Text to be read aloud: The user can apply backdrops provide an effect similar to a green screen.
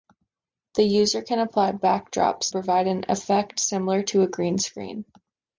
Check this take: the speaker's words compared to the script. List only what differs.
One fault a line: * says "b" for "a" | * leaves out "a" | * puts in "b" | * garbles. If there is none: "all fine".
all fine